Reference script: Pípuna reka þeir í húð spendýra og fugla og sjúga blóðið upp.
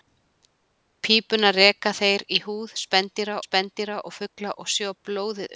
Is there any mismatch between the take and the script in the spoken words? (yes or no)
yes